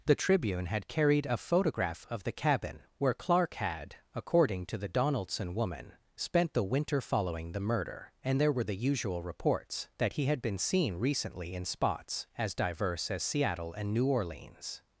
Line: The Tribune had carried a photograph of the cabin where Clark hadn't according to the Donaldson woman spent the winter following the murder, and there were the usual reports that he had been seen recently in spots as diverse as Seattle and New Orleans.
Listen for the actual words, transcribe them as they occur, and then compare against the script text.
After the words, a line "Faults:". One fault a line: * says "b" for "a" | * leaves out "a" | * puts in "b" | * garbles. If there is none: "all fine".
The Tribune had carried a photograph of the cabin where Clark had according to the Donaldson woman spent the winter following the murder, and there were the usual reports that he had been seen recently in spots as diverse as Seattle and New Orleans.
Faults:
* says "had" for "hadn't"